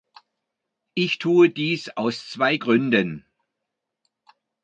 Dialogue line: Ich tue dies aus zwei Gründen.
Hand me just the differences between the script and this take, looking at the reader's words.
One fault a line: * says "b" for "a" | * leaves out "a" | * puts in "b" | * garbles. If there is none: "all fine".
all fine